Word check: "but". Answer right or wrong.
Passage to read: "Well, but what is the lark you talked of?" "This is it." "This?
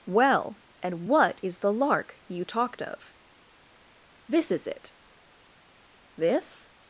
wrong